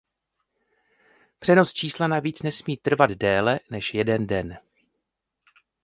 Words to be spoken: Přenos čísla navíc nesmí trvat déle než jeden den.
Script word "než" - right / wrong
right